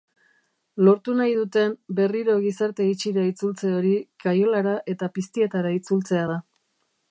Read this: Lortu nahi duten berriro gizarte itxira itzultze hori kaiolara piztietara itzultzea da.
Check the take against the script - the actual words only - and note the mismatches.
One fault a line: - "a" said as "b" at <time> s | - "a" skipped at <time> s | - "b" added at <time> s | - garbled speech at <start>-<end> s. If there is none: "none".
- "eta" added at 5.0 s